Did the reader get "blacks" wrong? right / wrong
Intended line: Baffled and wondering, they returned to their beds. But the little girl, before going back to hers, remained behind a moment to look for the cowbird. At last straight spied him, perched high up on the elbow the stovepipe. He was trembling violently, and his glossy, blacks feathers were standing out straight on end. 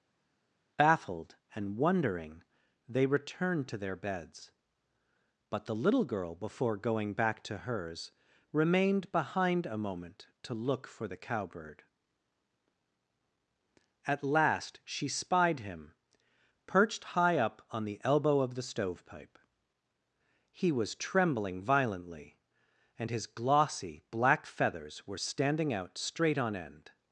wrong